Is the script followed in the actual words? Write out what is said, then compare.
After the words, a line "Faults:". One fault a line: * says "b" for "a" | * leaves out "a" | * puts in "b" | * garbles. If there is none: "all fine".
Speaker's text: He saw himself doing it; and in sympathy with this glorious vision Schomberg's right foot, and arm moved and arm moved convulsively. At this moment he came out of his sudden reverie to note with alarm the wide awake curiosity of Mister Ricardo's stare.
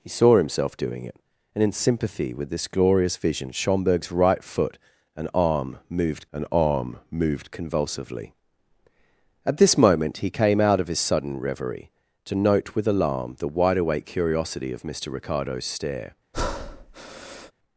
He saw himself doing it; and in sympathy with this glorious vision Schomberg's right foot, and arm moved and arm moved convulsively. At this moment he came out of his sudden reverie to note with alarm the wide awake curiosity of Mister Ricardo's stare.
Faults:
all fine